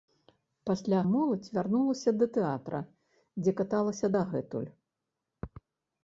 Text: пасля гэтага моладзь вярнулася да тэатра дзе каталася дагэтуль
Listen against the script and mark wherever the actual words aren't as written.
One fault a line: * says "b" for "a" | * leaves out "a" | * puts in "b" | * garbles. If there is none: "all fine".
* leaves out "гэтага"